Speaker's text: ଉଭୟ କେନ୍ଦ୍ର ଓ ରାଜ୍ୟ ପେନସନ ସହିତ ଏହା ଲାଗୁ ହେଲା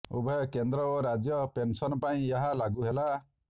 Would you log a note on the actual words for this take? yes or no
yes